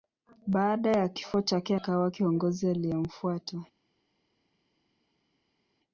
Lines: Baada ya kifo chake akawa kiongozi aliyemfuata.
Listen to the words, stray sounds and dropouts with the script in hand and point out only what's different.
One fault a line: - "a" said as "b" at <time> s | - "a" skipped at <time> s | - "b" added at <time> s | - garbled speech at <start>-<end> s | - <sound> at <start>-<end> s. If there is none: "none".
none